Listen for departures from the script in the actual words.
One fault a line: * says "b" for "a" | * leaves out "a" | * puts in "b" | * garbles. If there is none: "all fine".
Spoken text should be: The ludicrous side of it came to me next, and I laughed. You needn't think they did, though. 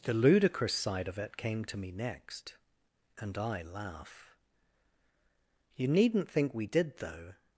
* says "laugh" for "laughed"
* says "we" for "they"